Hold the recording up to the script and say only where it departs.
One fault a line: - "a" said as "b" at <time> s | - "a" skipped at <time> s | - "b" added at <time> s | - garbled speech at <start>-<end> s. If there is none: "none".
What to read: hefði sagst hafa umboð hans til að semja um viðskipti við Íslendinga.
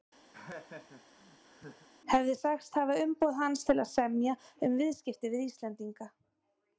none